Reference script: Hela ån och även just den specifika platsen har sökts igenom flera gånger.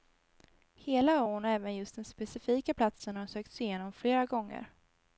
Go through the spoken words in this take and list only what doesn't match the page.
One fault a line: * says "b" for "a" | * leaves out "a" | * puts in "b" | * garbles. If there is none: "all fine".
all fine